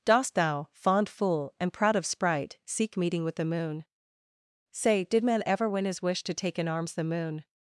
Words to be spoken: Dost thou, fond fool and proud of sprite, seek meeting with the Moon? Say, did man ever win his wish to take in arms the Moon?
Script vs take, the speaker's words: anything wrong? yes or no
no